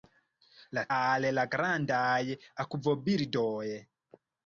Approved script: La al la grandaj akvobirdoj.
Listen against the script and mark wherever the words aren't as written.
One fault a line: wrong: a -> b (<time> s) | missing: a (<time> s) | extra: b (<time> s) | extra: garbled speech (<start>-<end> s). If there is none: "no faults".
no faults